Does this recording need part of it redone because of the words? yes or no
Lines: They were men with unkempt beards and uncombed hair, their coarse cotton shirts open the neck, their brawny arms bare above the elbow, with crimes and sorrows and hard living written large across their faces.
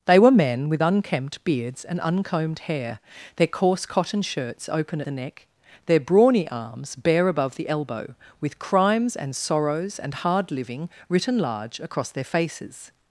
no